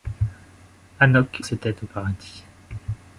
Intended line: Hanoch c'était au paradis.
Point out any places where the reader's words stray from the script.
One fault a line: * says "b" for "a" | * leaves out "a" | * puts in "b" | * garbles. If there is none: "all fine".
all fine